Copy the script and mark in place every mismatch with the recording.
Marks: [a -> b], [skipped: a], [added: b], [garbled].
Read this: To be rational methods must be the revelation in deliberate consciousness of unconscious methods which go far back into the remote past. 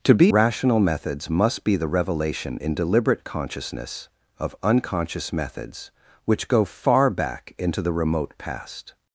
To be rational methods must be the revelation in deliberate consciousness of unconscious methods which go far back into the remote past.